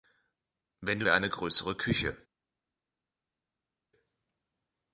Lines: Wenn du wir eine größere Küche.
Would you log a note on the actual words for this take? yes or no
no